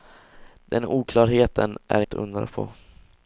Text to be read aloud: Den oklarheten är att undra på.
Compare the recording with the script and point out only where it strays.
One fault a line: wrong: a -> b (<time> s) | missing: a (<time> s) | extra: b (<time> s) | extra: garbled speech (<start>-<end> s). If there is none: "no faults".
no faults